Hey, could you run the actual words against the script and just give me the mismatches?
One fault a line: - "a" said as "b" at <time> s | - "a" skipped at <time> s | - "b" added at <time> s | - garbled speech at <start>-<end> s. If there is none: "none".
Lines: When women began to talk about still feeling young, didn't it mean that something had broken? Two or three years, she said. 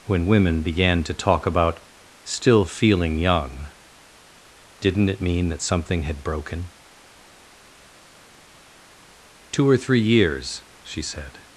none